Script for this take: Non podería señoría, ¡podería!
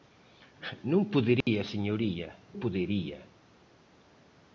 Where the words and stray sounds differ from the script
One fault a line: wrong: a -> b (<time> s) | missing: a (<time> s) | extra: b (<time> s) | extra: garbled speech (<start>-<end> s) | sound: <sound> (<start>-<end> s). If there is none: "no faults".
sound: dropout (1.4-1.5 s)